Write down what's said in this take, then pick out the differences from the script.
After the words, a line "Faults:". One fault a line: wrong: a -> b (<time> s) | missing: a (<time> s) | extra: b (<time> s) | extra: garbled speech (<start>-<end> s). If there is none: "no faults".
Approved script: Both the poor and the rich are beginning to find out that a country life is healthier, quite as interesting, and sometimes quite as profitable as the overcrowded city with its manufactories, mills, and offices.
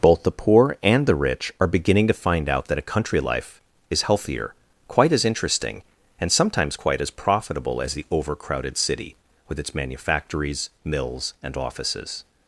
Both the poor and the rich are beginning to find out that a country life is healthier, quite as interesting, and sometimes quite as profitable as the overcrowded city with its manufactories, mills, and offices.
Faults:
no faults